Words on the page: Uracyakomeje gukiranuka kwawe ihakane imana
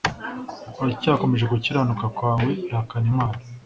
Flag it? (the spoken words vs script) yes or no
no